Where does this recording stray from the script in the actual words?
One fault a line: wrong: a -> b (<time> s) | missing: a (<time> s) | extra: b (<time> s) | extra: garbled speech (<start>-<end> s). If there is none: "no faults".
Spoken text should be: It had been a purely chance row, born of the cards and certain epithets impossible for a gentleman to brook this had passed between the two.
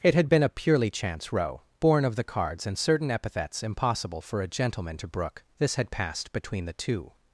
no faults